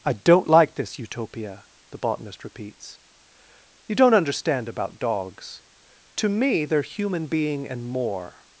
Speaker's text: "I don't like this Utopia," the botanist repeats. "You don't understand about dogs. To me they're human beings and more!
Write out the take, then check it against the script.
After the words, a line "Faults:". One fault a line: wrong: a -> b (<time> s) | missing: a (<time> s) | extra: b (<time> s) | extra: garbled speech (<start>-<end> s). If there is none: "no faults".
"I don't like this Utopia," the botanist repeats. "You don't understand about dogs. To me they're human being and more!
Faults:
wrong: beings -> being (7.3 s)